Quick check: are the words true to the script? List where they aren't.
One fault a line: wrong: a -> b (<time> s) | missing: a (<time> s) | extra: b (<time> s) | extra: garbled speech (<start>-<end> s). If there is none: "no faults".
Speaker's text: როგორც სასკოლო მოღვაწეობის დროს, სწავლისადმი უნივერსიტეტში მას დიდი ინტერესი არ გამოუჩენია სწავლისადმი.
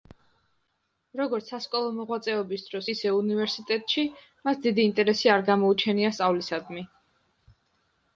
wrong: სწავლისადმი -> ისე (2.9 s)